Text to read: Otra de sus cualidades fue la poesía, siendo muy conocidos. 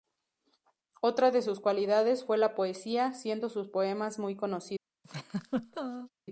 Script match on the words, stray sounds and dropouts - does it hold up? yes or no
no